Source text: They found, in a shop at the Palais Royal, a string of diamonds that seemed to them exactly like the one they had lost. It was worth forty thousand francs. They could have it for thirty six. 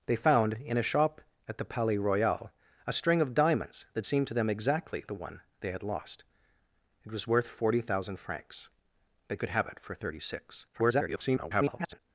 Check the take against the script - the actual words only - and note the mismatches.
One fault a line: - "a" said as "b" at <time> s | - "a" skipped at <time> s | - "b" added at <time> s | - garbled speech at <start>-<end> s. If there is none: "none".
- "like" skipped at 5.0 s
- garbled speech at 10.7-12.0 s